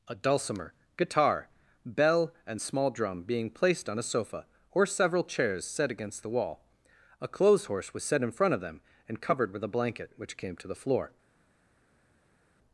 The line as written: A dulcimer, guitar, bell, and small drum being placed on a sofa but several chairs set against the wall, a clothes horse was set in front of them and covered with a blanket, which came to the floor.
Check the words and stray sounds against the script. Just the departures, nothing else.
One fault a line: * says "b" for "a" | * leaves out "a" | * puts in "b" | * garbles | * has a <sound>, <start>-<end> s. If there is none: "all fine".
* says "or" for "but"